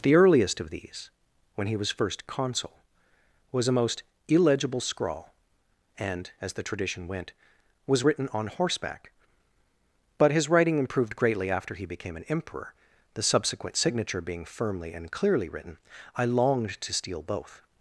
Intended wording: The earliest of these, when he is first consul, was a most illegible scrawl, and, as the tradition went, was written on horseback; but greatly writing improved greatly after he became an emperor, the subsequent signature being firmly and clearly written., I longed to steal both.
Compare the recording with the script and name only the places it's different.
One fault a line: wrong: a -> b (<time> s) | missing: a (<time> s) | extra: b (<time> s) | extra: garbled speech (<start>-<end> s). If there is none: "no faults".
wrong: is -> was (1.8 s)
wrong: greatly -> his (10.3 s)